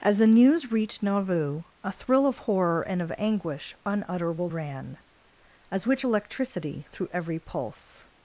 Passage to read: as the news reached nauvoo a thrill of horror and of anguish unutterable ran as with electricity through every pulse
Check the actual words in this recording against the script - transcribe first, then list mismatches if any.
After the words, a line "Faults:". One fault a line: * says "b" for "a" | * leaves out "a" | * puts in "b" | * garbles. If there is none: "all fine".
as the news reached nauvoo a thrill of horror and of anguish unutterable ran as which electricity through every pulse
Faults:
* says "which" for "with"